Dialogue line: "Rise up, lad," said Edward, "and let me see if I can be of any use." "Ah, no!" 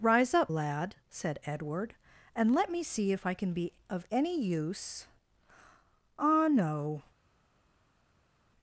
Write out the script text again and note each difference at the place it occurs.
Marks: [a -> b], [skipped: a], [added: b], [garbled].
"Rise up, lad," said Edward, "and let me see if I can be of any use." "Ah, no!"